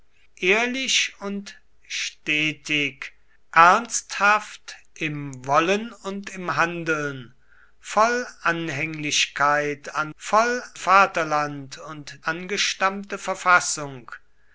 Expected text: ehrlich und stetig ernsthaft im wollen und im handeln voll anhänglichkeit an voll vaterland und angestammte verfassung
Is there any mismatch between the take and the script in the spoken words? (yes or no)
no